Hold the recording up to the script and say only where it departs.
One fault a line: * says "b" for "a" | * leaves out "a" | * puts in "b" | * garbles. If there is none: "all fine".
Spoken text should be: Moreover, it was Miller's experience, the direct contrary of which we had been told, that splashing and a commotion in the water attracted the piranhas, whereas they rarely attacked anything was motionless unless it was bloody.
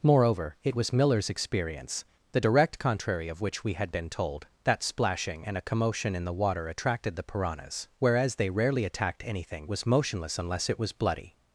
all fine